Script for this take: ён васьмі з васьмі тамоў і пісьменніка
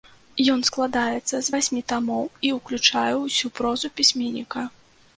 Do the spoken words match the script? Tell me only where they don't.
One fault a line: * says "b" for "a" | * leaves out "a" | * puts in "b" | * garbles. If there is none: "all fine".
* says "складаецца" for "васьмі"
* puts in "ўключае ўсю прозу"